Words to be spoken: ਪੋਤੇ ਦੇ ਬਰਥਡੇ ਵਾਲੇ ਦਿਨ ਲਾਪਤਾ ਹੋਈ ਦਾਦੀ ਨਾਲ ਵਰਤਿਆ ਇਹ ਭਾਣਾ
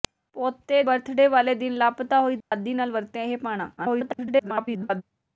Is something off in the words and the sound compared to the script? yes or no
yes